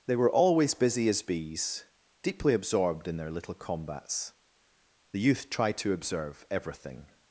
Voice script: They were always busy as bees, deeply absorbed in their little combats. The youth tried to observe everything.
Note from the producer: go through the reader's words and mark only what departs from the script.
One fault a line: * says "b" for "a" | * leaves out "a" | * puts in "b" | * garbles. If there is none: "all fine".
all fine